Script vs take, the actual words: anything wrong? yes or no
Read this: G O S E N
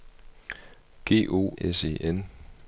no